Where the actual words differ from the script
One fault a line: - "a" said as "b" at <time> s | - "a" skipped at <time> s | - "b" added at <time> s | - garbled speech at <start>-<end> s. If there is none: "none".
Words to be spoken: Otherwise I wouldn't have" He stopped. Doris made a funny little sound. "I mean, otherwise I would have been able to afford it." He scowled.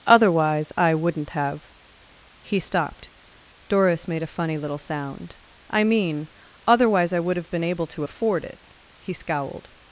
none